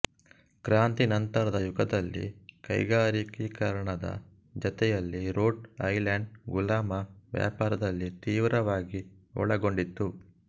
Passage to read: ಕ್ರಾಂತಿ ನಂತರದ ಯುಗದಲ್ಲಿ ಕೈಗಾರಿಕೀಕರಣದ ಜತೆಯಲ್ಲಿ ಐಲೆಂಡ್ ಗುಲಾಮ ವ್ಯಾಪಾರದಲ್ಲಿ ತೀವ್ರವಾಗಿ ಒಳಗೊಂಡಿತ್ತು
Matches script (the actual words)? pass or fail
fail